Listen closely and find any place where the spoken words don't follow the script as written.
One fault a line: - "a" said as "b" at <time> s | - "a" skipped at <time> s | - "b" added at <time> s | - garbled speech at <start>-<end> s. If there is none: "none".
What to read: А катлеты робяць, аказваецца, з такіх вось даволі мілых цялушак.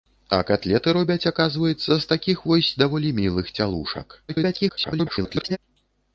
- garbled speech at 4.3-5.6 s